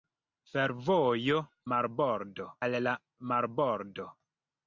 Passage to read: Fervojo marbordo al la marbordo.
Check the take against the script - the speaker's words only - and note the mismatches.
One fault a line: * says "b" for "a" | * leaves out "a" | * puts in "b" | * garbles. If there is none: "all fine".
all fine